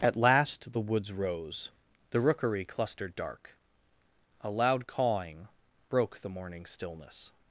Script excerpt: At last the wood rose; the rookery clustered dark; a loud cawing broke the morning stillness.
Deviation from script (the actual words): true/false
true